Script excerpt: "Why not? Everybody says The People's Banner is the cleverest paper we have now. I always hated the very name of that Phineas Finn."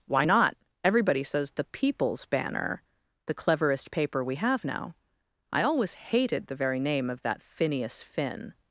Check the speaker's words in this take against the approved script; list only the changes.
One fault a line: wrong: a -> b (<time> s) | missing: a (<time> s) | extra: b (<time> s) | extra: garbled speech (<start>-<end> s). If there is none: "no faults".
missing: is (2.8 s)